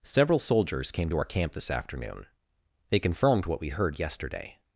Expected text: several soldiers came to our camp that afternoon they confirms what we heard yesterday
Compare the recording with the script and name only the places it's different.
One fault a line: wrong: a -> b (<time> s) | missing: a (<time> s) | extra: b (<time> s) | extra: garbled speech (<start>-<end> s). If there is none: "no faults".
wrong: that -> this (1.5 s)
wrong: confirms -> confirmed (3.0 s)